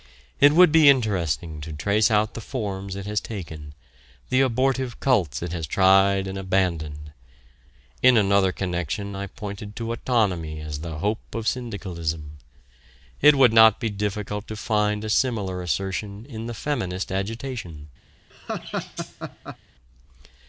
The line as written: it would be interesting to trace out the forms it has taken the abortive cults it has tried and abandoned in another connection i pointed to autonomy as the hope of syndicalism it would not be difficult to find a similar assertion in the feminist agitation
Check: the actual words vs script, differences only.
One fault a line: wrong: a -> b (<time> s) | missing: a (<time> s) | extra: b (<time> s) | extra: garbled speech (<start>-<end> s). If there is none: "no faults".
no faults